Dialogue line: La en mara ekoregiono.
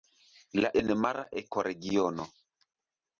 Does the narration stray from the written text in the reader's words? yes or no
no